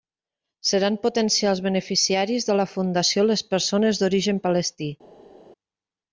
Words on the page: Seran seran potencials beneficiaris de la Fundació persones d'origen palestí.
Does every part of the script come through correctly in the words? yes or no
no